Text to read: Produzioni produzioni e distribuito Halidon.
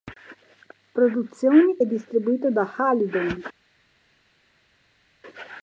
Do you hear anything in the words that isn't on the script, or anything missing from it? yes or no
yes